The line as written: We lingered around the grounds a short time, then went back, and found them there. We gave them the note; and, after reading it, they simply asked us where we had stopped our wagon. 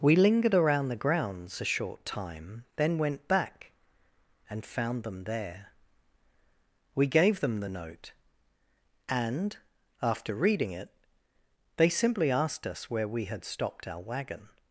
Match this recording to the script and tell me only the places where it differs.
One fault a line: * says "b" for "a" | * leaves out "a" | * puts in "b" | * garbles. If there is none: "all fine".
all fine